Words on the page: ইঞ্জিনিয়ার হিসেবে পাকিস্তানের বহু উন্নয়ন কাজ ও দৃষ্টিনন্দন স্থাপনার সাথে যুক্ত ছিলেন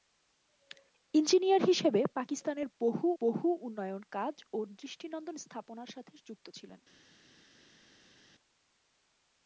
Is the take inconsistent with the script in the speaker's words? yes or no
yes